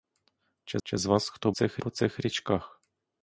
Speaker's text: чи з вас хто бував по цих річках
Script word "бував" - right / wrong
wrong